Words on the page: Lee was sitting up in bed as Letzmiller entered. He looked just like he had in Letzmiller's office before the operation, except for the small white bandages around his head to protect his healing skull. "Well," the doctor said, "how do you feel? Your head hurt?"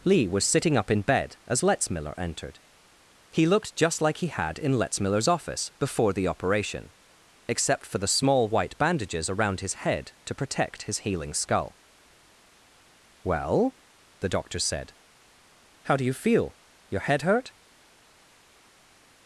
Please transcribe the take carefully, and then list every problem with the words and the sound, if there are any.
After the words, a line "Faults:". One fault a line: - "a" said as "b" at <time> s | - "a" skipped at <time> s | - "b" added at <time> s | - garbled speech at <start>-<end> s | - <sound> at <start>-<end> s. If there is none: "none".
Lee was sitting up in bed as Letzmiller entered. He looked just like he had in Letzmiller's office before the operation, except for the small white bandages around his head to protect his healing skull. "Well," the doctor said, "how do you feel? Your head hurt?"
Faults:
none